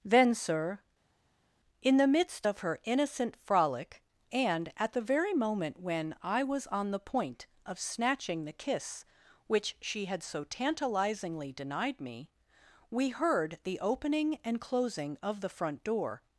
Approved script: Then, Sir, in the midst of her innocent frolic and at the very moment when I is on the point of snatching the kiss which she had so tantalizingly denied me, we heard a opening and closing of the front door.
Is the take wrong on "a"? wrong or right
wrong